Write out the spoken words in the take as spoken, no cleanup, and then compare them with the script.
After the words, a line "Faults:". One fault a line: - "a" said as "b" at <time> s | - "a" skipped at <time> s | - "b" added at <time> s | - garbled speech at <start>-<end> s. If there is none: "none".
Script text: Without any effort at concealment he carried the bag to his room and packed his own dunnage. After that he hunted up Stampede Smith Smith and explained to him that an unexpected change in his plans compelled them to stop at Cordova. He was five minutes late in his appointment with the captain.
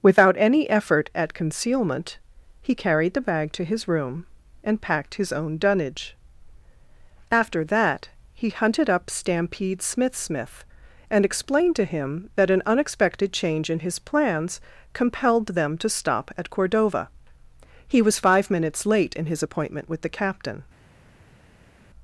Without any effort at concealment he carried the bag to his room and packed his own dunnage. After that he hunted up Stampede Smith Smith and explained to him that an unexpected change in his plans compelled them to stop at Cordova. He was five minutes late in his appointment with the captain.
Faults:
none